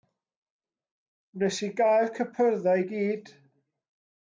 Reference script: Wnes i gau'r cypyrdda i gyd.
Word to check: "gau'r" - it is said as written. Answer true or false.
true